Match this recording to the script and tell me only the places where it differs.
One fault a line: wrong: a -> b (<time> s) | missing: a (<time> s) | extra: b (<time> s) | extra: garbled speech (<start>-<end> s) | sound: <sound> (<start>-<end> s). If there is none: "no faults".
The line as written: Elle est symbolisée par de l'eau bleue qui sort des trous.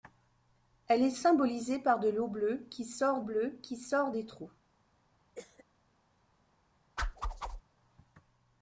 extra: bleue qui sort (3.2 s)
sound: cough (5.3-5.6 s)
sound: whoosh (7.0-7.6 s)